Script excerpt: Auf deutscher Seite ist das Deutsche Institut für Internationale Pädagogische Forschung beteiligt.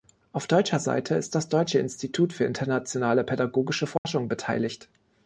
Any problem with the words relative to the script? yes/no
no